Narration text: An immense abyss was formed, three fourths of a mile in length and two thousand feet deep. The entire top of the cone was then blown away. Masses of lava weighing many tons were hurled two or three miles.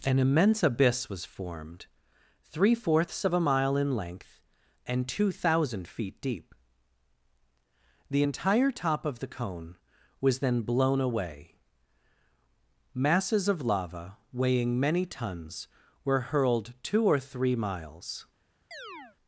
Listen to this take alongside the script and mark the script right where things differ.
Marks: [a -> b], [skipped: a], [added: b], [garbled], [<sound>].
An immense abyss was formed, three fourths of a mile in length and two thousand feet deep. The entire top of the cone was then blown away. Masses of lava weighing many tons were hurled two or three miles. [chirp]